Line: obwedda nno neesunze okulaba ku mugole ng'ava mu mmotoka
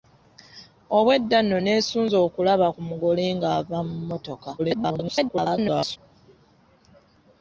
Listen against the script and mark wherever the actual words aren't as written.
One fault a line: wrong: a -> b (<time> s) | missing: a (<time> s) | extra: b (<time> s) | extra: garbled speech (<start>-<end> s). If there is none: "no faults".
extra: garbled speech (4.6-6.0 s)